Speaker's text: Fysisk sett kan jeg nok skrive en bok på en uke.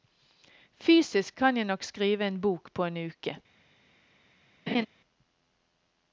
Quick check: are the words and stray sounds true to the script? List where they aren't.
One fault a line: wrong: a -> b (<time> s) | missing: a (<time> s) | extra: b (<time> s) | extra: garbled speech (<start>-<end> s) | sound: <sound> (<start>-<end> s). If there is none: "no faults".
missing: sett (1.4 s)
sound: laugh (4.7-4.9 s)